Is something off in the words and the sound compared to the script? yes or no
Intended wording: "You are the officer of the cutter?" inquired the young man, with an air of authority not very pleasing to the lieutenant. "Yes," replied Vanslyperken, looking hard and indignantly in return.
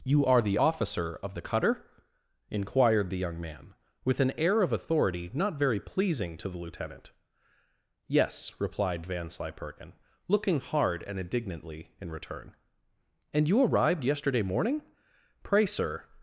yes